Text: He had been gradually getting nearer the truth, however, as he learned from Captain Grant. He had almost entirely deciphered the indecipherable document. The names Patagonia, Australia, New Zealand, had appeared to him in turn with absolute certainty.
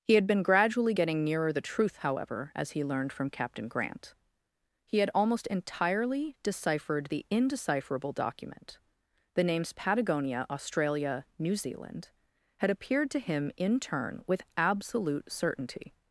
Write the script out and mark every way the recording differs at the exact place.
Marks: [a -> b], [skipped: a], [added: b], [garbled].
He had been gradually getting nearer the truth, however, as he learned from Captain Grant. He had almost entirely deciphered the indecipherable document. The names Patagonia, Australia, New Zealand, had appeared to him in turn with absolute certainty.